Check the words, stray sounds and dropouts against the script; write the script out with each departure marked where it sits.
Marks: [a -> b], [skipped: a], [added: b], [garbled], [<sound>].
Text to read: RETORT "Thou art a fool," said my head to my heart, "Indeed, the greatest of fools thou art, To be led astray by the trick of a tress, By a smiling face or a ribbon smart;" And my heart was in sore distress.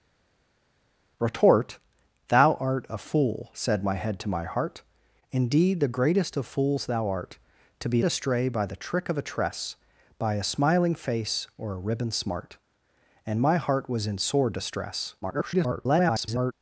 RETORT "Thou art a fool," said my head to my heart, "Indeed, the greatest of fools thou art, To be [skipped: led] astray by the trick of a tress, By a smiling face or a ribbon smart;" And my heart was in sore distress. [garbled]